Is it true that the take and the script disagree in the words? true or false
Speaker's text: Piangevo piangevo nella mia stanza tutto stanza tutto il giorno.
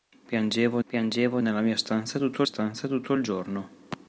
false